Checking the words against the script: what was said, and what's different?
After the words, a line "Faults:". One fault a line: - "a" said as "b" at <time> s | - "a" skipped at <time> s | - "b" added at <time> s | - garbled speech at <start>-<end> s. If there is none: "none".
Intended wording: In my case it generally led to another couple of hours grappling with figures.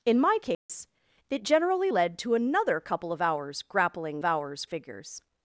In my case it generally led to another couple of hours grappling hours figures.
Faults:
- "with" said as "hours" at 4.2 s